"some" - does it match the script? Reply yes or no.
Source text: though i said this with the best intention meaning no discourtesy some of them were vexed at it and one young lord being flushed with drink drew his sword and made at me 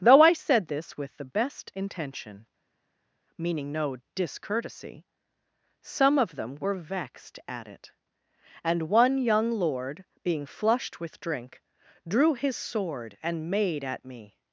yes